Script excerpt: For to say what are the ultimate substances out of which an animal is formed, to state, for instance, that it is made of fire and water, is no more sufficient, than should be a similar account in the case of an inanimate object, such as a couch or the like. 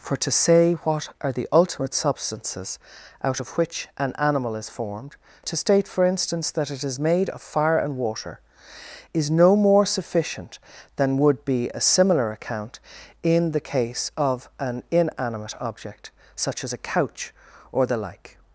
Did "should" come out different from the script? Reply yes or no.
yes